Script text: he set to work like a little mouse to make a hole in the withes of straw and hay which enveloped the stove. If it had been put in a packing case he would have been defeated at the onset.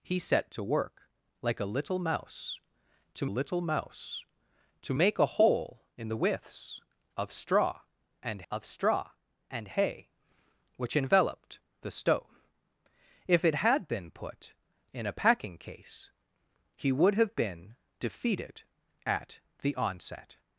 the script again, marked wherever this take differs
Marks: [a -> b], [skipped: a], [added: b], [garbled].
he set to work like a little mouse to [added: little mouse to] make a hole in the withes of straw and [added: of straw and] hay which enveloped the stove. If it had been put in a packing case he would have been defeated at the onset.